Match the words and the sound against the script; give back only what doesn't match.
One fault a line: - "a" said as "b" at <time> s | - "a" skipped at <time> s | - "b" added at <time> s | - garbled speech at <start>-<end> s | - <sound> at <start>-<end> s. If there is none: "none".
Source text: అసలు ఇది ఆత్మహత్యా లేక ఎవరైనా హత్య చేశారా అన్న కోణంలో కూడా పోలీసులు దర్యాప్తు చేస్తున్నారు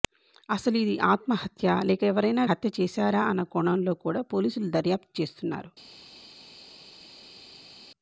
none